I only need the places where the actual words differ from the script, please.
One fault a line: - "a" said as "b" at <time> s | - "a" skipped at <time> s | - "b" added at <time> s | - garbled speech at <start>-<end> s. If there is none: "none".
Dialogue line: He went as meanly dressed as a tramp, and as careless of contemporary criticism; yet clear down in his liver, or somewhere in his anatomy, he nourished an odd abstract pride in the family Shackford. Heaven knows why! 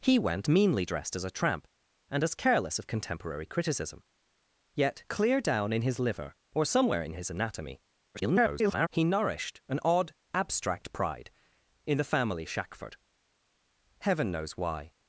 - "as" skipped at 0.5 s
- garbled speech at 8.1-8.9 s